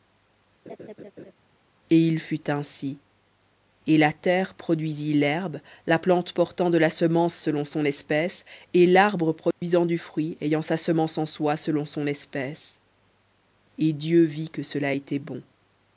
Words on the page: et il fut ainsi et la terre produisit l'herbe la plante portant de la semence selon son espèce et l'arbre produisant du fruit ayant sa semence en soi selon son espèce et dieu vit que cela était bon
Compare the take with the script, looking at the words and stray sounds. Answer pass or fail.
fail